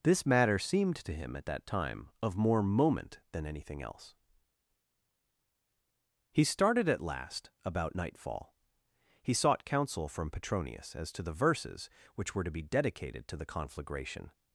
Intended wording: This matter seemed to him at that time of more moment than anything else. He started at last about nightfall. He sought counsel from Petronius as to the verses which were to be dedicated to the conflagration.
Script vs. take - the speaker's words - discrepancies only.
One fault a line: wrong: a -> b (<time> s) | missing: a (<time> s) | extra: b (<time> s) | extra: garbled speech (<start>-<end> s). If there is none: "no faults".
no faults